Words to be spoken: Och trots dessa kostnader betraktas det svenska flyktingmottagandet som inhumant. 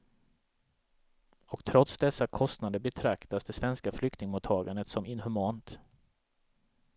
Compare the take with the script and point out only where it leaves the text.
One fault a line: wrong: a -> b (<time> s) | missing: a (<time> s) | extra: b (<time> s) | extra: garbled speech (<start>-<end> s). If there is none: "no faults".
no faults